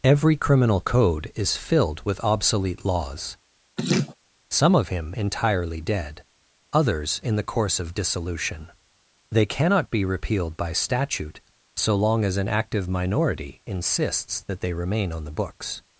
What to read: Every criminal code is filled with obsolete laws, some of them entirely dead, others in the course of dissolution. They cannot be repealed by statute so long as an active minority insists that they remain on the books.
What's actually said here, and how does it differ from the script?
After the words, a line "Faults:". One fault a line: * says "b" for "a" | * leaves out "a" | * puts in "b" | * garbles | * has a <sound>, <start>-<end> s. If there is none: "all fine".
Every criminal code is filled with obsolete laws, some of him entirely dead, others in the course of dissolution. They cannot be repealed by statute so long as an active minority insists that they remain on the books.
Faults:
* has a laugh, 3.8-4.1 s
* says "him" for "them"